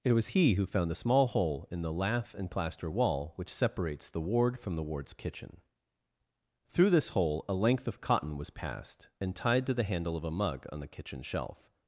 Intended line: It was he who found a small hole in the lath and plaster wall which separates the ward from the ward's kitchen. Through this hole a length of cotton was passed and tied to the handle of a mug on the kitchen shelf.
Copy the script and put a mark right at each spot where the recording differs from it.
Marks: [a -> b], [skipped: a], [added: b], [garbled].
It was he who found a small hole in the lath and plaster wall which separates the ward from the ward's kitchen. Through this hole a length of cotton was passed and tied to the handle of a mug on the kitchen shelf.